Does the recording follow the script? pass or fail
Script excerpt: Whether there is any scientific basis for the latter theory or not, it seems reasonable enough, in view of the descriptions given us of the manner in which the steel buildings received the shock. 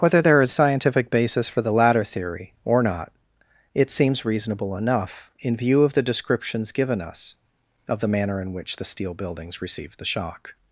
fail